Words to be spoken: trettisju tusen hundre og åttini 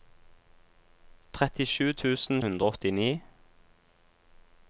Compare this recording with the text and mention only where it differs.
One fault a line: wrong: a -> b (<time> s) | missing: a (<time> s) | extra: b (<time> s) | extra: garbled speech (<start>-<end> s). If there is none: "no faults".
no faults